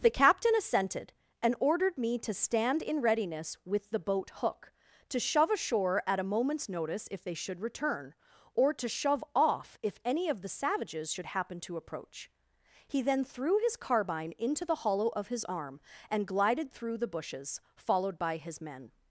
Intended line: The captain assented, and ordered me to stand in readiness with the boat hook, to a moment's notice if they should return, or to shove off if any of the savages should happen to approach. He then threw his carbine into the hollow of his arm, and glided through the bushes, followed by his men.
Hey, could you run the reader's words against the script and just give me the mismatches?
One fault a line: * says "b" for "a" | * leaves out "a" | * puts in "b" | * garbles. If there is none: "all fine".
* puts in "shove ashore at"